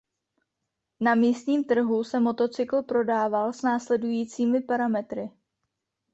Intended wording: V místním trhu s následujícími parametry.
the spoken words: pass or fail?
fail